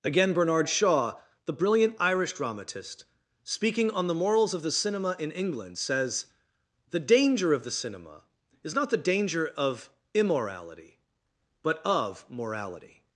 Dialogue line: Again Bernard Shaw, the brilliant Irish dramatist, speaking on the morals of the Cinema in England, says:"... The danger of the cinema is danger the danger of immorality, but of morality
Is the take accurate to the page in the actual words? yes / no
no